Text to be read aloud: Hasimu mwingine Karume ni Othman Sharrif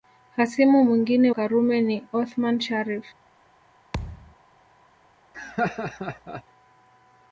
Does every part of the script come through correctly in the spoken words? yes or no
yes